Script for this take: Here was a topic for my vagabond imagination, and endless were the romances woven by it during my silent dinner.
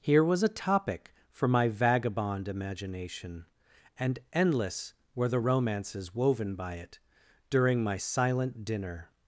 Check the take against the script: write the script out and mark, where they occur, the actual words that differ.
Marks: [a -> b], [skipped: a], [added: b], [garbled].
Here was a topic for my vagabond imagination, and endless were the romances woven by it during my silent dinner.